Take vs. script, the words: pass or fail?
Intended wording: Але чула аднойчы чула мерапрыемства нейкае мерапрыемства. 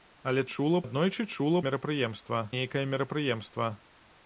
pass